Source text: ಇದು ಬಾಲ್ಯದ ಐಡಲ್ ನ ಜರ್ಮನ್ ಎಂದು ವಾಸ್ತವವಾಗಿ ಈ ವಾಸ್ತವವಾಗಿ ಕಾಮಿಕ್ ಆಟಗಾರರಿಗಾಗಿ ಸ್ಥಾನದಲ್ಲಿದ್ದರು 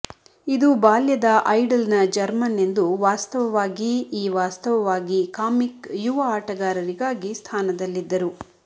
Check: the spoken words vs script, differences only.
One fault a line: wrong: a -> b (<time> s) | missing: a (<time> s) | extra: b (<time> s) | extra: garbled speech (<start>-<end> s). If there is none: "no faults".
extra: ಯುವ (6.0 s)